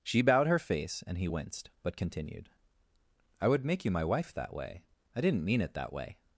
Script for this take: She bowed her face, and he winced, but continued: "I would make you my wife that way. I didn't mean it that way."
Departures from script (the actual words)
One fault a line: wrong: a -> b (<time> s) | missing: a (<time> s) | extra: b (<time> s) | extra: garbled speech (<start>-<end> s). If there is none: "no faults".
no faults